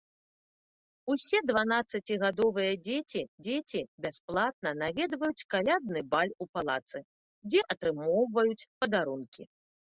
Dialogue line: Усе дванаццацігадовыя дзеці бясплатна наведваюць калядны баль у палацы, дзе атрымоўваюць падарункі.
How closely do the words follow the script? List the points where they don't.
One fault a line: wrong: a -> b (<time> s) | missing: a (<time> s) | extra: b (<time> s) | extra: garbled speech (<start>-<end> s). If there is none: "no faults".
extra: дзеці (3.5 s)